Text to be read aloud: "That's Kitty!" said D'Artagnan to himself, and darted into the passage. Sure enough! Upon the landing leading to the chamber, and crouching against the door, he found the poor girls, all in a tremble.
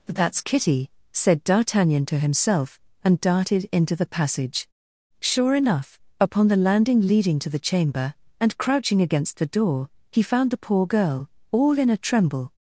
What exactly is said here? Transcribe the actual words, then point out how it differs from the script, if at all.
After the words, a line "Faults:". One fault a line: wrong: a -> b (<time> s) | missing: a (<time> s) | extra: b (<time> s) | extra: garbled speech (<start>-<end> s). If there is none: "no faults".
"That's Kitty!" said D'Artagnan to himself, and darted into the passage. Sure enough! Upon the landing leading to the chamber, and crouching against the door, he found the poor girl, all in a tremble.
Faults:
wrong: girls -> girl (10.8 s)